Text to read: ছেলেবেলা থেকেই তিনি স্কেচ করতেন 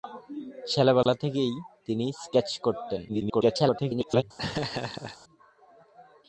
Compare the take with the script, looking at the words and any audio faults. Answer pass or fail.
fail